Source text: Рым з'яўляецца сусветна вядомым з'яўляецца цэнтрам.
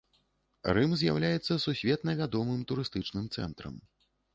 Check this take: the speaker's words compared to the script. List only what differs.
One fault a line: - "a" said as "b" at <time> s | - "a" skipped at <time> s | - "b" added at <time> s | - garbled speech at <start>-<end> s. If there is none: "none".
- "з'яўляецца" said as "турыстычным" at 2.7 s